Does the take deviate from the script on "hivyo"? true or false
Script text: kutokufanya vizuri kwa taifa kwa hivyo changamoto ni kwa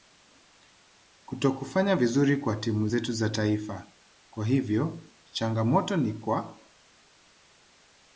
false